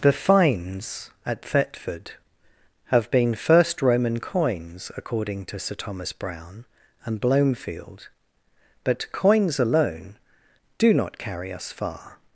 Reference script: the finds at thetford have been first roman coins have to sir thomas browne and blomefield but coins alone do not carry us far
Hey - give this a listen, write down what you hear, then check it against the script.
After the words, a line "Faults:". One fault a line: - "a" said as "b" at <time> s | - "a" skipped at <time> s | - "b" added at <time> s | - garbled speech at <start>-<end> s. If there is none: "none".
the finds at thetford have been first roman coins according to sir thomas browne and blomefield but coins alone do not carry us far
Faults:
- "have" said as "according" at 5.0 s